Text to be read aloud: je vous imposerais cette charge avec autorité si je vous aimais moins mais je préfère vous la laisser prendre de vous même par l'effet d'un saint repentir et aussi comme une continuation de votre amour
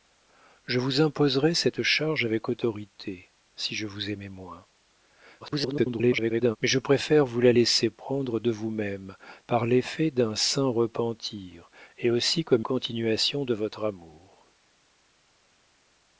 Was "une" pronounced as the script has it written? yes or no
no